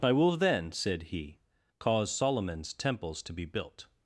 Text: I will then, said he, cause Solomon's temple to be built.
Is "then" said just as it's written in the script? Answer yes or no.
yes